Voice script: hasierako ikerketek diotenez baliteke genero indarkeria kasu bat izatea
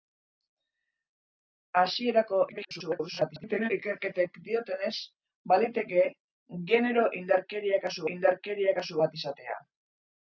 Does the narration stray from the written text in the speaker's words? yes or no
yes